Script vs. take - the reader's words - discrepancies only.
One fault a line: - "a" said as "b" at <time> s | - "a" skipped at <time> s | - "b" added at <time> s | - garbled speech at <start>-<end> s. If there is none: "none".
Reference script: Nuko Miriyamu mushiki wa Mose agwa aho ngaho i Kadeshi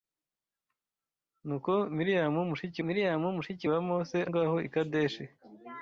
- "Miriyamu mushiki" added at 2.8 s
- "agwa aho" skipped at 4.2 s